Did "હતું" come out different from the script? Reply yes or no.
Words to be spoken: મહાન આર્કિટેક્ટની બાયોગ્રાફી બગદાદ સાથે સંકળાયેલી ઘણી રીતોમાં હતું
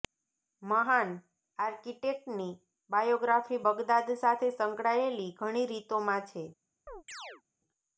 yes